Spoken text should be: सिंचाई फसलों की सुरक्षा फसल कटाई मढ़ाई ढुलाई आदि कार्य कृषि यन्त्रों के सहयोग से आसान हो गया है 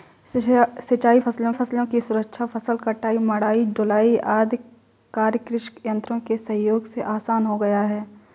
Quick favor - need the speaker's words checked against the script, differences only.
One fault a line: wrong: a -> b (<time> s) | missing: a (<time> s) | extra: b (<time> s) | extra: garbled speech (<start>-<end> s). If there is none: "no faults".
extra: फसलों (1.5 s)